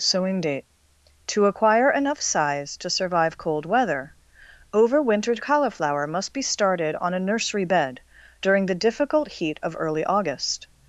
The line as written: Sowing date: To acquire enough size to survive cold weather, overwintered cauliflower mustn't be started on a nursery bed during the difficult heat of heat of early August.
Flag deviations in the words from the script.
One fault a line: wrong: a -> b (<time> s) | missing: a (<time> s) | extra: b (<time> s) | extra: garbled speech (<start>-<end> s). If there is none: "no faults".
wrong: mustn't -> must (6.1 s)
missing: heat of (9.8 s)